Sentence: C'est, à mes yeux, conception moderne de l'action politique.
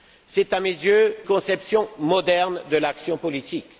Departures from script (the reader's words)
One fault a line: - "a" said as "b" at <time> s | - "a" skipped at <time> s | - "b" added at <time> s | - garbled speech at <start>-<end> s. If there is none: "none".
none